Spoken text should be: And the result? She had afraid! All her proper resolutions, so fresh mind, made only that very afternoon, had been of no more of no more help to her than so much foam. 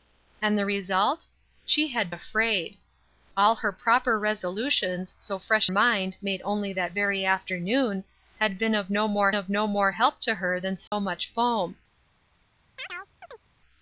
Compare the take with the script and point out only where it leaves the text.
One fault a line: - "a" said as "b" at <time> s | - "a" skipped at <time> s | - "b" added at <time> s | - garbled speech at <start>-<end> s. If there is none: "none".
none